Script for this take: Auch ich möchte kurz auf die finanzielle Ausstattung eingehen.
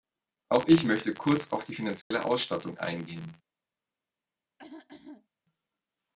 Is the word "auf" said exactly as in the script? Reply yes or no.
yes